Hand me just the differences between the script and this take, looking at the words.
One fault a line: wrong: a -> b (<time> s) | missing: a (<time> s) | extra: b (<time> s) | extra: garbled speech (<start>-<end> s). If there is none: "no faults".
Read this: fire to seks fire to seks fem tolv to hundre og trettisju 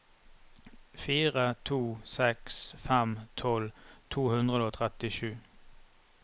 missing: fire to seks (2.6 s)